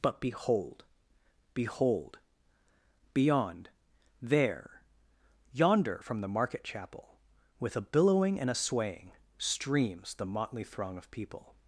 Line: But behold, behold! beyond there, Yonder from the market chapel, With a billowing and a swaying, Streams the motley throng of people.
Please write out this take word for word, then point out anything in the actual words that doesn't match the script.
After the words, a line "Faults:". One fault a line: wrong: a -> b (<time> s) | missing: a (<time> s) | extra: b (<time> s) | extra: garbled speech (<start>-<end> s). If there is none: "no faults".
But behold, behold! beyond there, Yonder from the market chapel, With a billowing and a swaying, Streams the motley throng of people.
Faults:
no faults